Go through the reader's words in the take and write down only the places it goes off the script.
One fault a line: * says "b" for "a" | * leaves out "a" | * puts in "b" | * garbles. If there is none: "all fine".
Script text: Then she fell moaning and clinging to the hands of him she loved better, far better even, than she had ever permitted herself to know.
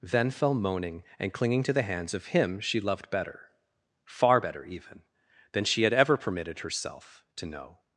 * leaves out "she"